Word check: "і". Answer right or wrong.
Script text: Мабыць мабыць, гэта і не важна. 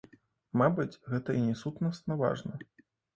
right